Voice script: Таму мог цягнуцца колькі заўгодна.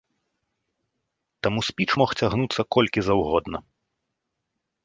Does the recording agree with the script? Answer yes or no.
no